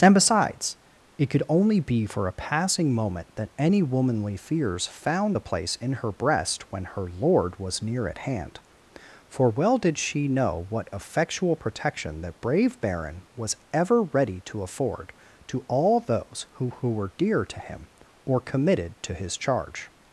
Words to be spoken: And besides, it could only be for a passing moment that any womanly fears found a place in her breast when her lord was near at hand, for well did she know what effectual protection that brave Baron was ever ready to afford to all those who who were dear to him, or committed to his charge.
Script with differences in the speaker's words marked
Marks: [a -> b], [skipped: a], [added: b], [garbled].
And besides, it could only be for a passing moment that any womanly fears found a place in her breast when her lord was near at hand, for well did she know what effectual protection that brave Baron was ever ready to afford to all those who who were dear to him, or committed to his charge.